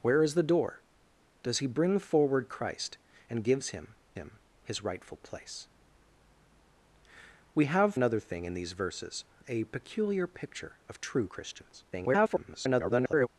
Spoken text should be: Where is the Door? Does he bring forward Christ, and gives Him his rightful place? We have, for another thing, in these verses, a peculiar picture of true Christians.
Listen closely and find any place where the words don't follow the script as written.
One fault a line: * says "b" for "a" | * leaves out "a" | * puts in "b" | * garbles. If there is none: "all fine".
* puts in "Him"
* leaves out "for"
* garbles